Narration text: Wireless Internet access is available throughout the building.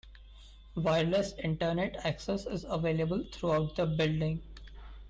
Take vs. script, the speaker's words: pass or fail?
pass